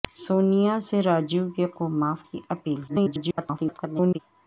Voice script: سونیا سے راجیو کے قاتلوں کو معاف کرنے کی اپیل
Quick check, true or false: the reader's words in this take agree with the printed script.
false